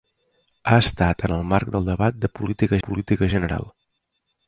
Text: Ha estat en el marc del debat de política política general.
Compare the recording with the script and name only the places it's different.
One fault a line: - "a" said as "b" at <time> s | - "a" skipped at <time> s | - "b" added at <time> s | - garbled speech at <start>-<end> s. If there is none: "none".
none